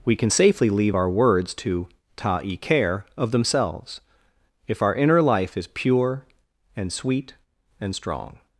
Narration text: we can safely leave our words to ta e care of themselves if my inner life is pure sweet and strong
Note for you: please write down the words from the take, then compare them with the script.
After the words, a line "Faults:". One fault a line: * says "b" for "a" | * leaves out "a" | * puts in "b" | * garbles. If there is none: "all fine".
we can safely leave our words to ta e care of themselves if our inner life is pure and sweet and strong
Faults:
* says "our" for "my"
* puts in "and"